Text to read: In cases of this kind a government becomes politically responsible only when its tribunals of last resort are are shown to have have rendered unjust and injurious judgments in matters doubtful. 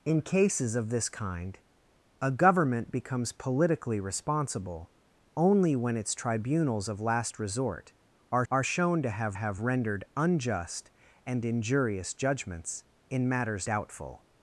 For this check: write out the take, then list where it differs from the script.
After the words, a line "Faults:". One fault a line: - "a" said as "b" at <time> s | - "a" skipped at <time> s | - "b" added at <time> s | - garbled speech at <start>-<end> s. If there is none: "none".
In cases of this kind a government becomes politically responsible only when its tribunals of last resort are are shown to have have rendered unjust and injurious judgments in matters doubtful.
Faults:
none